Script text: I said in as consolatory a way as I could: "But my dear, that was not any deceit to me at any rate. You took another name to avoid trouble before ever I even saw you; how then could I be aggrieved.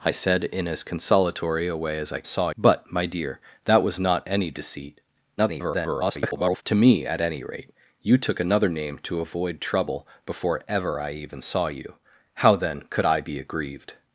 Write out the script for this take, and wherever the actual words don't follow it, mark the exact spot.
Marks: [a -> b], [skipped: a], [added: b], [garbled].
I said in as consolatory a way as I [could: -> saw] "But my dear, that was not any deceit [garbled] to me at any rate. You took another name to avoid trouble before ever I even saw you; how then could I be aggrieved.